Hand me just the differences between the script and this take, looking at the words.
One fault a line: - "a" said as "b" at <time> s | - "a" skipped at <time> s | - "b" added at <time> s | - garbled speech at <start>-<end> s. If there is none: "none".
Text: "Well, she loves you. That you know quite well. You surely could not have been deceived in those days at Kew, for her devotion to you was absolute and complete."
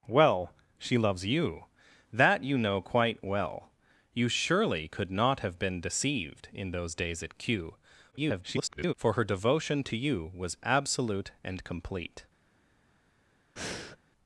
- garbled speech at 8.1-8.9 s